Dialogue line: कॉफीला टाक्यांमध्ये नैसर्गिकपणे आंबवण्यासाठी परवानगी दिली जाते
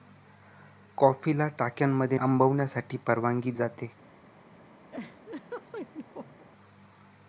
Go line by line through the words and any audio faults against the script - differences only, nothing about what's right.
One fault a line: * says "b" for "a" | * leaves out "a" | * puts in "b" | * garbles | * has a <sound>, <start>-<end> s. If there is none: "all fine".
* leaves out "नैसर्गिकपणे"
* leaves out "दिली"
* has a laugh, 4.9-6.5 s